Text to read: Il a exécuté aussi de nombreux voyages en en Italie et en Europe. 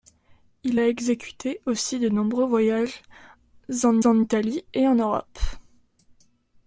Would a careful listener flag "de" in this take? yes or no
no